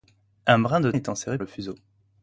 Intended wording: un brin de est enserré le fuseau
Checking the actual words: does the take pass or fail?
pass